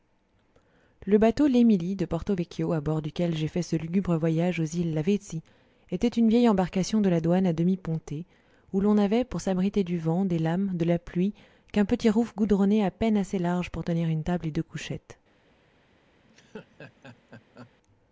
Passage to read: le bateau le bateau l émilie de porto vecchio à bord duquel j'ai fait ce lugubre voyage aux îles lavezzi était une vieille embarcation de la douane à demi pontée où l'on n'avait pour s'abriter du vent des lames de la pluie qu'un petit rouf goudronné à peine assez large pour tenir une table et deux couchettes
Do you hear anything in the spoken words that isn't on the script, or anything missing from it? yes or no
yes